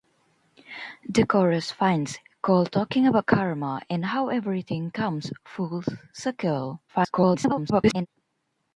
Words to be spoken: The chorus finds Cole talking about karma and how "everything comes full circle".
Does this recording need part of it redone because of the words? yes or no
yes